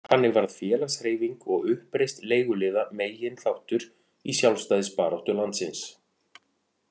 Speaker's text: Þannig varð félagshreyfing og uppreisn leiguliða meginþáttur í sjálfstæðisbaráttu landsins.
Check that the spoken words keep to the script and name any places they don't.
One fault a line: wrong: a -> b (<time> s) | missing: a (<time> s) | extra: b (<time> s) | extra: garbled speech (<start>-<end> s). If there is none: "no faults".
no faults